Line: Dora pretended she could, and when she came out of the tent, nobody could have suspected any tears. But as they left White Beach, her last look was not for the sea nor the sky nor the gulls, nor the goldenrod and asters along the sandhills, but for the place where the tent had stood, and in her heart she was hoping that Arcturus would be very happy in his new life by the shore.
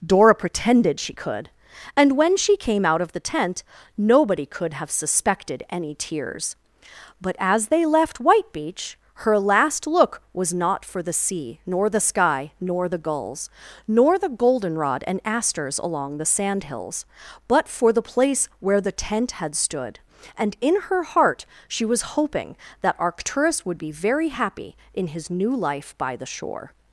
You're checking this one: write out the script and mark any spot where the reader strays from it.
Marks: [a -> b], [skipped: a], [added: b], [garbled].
Dora pretended she could, and when she came out of the tent, nobody could have suspected any tears. But as they left White Beach, her last look was not for the sea nor the sky nor the gulls, nor the goldenrod and asters along the sandhills, but for the place where the tent had stood, and in her heart she was hoping that Arcturus would be very happy in his new life by the shore.